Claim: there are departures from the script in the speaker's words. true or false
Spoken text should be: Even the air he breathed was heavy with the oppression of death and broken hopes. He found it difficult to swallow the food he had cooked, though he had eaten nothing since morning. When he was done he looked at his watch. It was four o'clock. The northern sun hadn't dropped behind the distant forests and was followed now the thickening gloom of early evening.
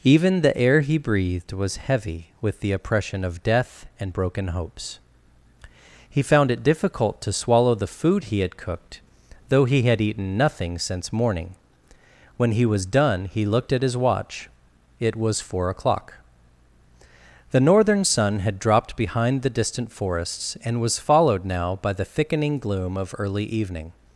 true